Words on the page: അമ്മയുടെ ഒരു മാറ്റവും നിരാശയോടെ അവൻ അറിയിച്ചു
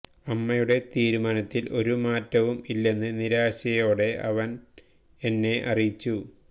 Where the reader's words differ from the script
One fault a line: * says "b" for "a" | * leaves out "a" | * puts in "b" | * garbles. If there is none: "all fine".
* puts in "തീരുമാനത്തിൽ"
* puts in "ഇല്ലെന്ന്"
* puts in "എന്നെ"